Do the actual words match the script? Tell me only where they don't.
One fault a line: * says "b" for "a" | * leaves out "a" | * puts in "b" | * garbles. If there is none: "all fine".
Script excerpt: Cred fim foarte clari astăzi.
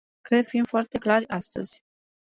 all fine